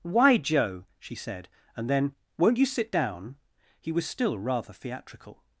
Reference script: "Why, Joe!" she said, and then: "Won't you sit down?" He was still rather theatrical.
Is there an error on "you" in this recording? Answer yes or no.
no